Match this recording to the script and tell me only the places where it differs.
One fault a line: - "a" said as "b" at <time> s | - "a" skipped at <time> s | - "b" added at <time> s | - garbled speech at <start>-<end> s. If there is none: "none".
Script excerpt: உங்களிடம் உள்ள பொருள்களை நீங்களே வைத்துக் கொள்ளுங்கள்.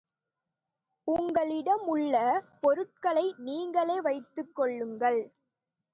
none